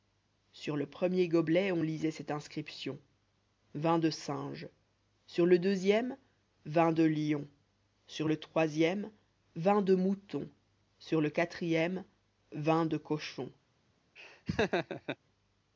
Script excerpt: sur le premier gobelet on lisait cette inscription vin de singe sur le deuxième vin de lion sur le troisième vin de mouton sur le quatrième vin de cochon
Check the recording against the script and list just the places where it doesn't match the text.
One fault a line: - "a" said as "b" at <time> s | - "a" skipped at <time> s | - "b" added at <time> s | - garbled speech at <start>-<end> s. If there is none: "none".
none